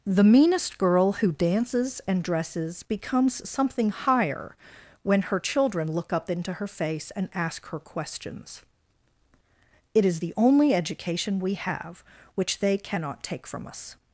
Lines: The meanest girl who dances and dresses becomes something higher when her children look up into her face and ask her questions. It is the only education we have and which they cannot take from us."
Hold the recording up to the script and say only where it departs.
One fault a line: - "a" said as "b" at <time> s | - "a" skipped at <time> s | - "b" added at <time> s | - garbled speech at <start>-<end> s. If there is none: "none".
- "and" skipped at 12.0 s